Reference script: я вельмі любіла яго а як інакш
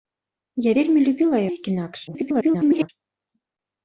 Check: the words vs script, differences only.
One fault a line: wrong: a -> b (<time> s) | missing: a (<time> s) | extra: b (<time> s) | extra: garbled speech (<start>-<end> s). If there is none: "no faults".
missing: яго а (1.4 s)
extra: garbled speech (2.1-2.9 s)